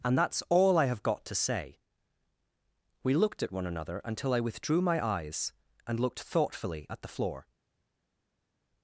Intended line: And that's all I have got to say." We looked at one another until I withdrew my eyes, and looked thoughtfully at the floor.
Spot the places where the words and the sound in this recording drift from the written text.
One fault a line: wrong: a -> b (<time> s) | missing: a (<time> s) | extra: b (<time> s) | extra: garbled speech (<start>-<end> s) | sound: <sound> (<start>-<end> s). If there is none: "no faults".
no faults